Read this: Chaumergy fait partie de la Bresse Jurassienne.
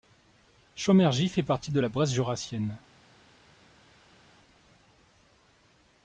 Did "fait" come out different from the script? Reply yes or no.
no